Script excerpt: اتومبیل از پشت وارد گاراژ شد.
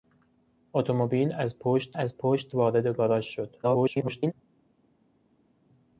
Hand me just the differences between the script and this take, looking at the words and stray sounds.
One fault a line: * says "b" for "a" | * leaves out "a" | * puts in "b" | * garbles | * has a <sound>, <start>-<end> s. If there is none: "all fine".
* puts in "از پشت"
* garbles